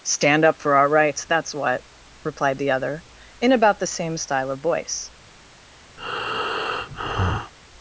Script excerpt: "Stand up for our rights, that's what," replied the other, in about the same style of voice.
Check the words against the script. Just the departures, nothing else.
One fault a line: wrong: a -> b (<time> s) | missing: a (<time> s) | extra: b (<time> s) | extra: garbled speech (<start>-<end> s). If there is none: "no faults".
no faults